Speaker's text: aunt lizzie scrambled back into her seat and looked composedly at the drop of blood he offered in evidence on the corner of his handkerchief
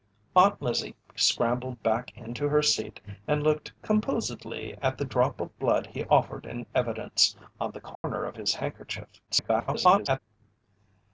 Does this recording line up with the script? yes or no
no